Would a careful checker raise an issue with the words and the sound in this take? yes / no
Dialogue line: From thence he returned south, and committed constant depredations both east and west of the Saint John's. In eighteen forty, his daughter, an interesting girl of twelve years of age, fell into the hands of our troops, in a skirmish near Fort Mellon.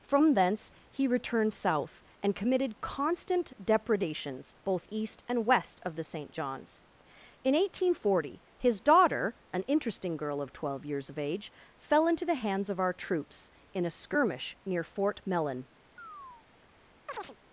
yes